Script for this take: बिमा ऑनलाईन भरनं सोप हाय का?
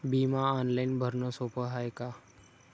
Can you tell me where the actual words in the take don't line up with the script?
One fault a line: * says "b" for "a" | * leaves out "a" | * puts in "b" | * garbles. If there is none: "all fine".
all fine